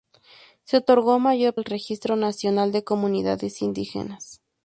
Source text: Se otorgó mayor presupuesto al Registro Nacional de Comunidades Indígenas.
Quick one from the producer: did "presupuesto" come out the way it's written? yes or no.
no